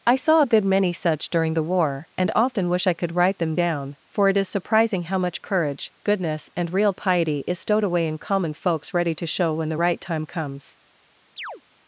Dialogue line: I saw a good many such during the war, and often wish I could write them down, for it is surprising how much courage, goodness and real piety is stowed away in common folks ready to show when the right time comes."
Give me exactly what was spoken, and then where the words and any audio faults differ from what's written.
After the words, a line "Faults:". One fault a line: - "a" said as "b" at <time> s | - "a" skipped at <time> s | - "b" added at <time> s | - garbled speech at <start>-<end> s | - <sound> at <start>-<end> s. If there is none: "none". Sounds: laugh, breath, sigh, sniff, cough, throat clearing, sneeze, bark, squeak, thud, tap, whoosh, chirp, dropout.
I saw a good many such during the war, and often wish I could write them down, for it is surprising how much courage, goodness and real piety is stowed away in common folks ready to show when the right time comes."
Faults:
- chirp at 11.4-11.6 s